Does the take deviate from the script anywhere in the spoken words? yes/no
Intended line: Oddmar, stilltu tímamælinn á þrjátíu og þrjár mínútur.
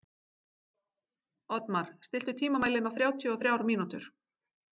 no